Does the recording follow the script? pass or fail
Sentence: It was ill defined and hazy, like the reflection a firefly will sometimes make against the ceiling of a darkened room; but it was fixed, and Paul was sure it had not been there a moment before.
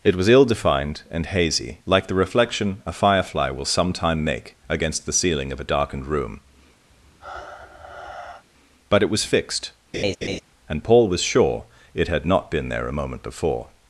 fail